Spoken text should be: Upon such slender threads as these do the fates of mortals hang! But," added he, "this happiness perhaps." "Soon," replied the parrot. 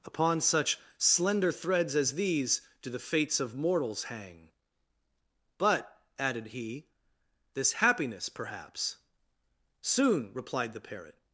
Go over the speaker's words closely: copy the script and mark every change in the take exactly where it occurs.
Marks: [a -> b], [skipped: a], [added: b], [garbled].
Upon such slender threads as these do the fates of mortals hang! But," added he, "this happiness perhaps." "Soon," replied the parrot.